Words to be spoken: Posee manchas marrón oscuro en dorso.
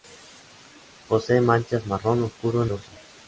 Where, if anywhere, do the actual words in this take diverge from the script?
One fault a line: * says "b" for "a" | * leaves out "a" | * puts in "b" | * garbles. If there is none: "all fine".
all fine